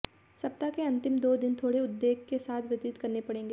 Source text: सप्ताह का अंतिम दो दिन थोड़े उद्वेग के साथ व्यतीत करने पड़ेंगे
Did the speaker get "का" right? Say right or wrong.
wrong